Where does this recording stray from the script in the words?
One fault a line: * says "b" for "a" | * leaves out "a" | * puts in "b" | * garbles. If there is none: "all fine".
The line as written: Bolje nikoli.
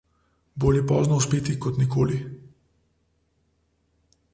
* puts in "pozno uspeti kot"